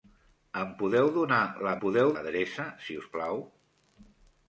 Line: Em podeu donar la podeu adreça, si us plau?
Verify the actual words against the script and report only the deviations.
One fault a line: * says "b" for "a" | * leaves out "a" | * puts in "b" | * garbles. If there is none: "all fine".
all fine